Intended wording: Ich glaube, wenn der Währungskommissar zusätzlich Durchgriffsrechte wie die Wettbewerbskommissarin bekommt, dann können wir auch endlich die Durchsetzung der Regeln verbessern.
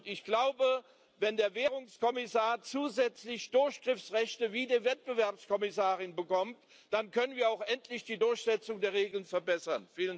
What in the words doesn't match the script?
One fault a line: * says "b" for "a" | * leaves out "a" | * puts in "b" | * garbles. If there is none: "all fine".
all fine